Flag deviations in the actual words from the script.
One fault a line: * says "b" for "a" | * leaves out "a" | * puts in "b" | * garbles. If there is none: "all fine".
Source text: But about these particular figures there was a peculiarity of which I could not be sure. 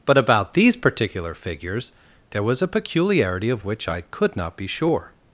all fine